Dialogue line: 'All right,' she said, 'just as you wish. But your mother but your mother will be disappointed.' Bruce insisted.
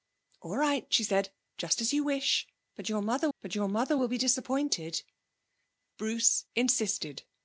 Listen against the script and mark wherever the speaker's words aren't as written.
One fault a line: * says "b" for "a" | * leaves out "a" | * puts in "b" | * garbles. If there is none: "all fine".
all fine